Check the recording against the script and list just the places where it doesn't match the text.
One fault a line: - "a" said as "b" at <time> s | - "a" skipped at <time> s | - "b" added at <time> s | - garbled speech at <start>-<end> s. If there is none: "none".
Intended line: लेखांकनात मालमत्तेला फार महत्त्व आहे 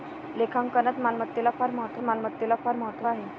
- "मालमत्तेला फार महत्त्व" added at 2.0 s